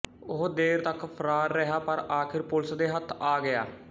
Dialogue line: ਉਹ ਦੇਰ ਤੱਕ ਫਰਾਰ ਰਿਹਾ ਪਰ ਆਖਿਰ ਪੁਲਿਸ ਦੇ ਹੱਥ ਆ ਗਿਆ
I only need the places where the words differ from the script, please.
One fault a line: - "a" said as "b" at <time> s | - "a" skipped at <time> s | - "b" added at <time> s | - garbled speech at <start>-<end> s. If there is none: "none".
none